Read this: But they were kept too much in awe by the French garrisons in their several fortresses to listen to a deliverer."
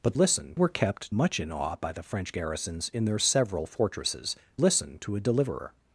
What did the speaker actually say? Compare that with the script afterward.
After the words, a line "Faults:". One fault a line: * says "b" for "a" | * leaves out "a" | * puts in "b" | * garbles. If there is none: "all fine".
But listen were kept much in awe by the French garrisons in their several fortresses listen to a deliverer."
Faults:
* says "listen" for "they"
* leaves out "too"
* leaves out "to"